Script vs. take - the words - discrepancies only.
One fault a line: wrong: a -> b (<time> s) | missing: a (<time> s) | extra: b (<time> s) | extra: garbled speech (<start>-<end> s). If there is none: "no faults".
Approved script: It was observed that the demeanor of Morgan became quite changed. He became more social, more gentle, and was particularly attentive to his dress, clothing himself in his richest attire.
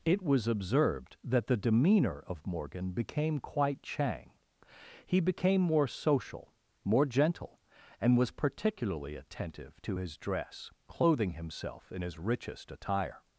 wrong: changed -> chang (3.8 s)